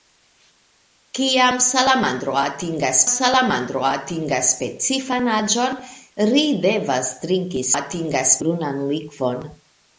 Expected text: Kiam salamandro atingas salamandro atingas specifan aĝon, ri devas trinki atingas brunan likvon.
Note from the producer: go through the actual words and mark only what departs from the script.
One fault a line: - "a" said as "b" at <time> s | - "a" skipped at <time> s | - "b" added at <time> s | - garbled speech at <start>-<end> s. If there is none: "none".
none